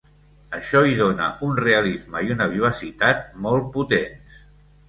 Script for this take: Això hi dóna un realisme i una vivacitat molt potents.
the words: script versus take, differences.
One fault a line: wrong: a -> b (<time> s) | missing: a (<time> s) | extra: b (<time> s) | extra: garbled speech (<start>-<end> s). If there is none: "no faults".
no faults